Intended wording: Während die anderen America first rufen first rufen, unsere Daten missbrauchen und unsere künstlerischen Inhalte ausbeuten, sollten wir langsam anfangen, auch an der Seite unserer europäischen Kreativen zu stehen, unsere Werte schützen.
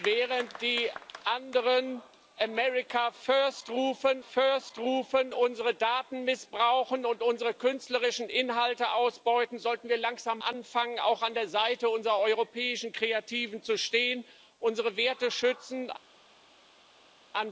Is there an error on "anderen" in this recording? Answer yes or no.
no